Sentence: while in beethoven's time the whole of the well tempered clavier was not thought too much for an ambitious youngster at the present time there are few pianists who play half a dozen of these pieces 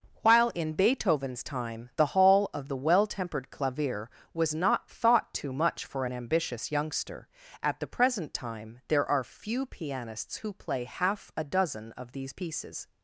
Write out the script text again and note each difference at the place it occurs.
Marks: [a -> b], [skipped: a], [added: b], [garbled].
while in beethoven's time the [whole -> hall] of the well tempered clavier was not thought too much for an ambitious youngster at the present time there are few pianists who play half a dozen of these pieces